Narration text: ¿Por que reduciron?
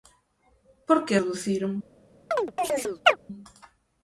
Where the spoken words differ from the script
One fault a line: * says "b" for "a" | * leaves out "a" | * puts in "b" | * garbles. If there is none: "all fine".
all fine